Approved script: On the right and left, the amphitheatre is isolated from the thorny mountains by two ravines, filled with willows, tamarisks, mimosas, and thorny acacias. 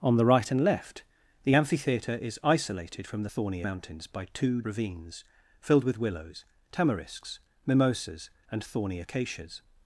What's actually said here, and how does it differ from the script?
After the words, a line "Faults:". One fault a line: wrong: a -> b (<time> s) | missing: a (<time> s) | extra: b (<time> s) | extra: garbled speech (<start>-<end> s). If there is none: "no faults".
On the right and left, the amphitheatre is isolated from the thorny mountains by two ravines, filled with willows, tamarisks, mimosas, and thorny acacias.
Faults:
no faults